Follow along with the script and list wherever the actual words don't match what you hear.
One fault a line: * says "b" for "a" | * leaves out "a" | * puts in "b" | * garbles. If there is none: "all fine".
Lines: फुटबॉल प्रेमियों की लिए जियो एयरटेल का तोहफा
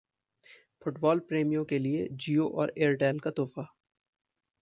* says "के" for "की"
* puts in "और"